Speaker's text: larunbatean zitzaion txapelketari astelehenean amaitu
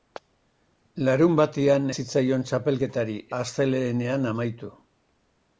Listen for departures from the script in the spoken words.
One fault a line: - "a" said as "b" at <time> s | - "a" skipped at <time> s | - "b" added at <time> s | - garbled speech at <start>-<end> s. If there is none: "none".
none